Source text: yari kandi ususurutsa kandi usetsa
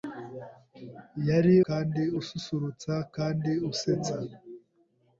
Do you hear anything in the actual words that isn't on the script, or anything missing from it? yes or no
no